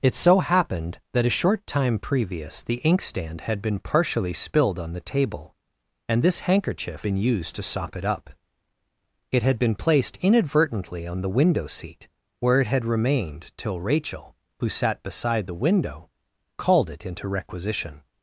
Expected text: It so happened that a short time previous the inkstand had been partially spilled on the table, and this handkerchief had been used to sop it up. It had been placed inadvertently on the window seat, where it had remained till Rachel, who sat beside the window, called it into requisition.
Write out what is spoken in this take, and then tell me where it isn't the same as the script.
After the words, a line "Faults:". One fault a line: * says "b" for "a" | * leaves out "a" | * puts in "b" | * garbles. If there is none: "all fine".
It so happened that a short time previous the inkstand had been partially spilled on the table, and this handkerchief been used to sop it up. It had been placed inadvertently on the window seat, where it had remained till Rachel, who sat beside the window, called it into requisition.
Faults:
* leaves out "had"